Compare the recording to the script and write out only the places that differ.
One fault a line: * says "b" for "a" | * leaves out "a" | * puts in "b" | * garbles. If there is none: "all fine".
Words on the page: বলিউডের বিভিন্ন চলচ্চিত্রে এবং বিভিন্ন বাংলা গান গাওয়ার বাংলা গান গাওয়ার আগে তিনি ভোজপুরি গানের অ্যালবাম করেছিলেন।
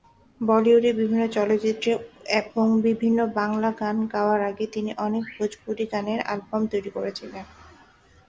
* leaves out "বাংলা গান গাওয়ার"
* puts in "অনেক"
* puts in "তৈরি"